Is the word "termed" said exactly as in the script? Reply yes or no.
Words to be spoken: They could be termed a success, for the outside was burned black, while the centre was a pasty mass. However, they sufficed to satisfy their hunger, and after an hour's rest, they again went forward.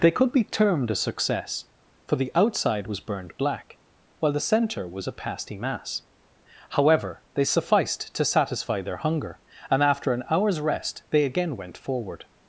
yes